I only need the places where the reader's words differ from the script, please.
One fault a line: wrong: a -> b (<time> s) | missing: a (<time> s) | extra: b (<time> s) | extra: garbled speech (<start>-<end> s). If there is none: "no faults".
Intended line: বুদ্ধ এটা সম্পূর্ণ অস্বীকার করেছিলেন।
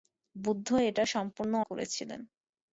missing: অস্বীকার (1.5 s)